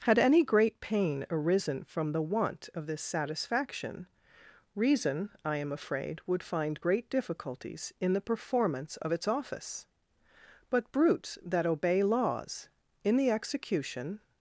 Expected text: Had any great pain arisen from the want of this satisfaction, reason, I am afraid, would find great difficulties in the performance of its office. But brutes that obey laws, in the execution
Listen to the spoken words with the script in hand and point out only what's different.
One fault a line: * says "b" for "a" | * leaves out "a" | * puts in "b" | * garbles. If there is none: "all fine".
all fine